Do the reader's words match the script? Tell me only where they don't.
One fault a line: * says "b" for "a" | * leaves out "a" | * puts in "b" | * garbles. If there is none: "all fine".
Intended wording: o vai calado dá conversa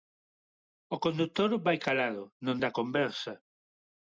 * puts in "condutor"
* puts in "non"